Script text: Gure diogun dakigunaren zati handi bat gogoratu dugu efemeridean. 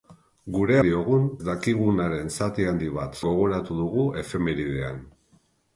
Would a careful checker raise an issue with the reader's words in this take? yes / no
no